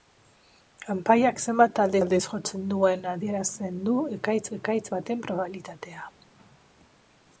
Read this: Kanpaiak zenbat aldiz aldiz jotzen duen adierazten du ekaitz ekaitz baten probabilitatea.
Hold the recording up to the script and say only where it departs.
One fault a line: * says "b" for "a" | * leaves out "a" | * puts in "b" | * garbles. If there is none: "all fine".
all fine